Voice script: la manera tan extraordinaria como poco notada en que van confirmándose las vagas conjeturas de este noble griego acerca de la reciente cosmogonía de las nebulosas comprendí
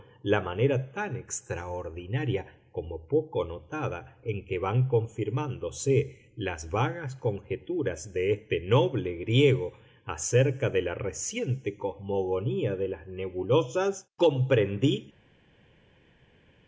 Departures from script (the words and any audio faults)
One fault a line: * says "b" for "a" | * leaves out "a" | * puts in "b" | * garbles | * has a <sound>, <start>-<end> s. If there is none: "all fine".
all fine